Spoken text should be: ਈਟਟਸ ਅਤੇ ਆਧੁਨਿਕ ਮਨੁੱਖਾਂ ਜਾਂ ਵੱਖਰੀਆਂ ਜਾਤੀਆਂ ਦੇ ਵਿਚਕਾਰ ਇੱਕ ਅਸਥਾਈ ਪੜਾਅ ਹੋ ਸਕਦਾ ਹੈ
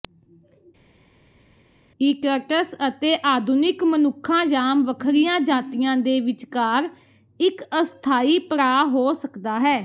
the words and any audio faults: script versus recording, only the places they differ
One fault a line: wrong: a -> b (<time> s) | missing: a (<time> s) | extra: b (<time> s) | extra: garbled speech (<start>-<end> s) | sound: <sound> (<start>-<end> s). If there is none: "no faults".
no faults